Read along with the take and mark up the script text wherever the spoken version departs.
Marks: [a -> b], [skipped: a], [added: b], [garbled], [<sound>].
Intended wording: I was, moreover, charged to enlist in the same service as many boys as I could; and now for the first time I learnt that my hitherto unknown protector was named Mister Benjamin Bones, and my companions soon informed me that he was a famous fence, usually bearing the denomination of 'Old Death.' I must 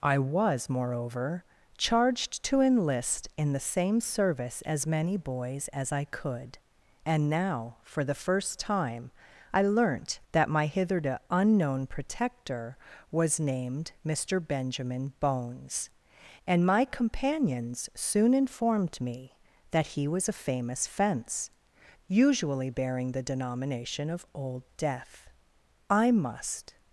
I was, moreover, charged to enlist in the same service as many boys as I could; and now for the first time I learnt that my hitherto unknown protector was named Mister Benjamin Bones, and my companions soon informed me that he was a famous fence, usually bearing the denomination of 'Old Death.' I must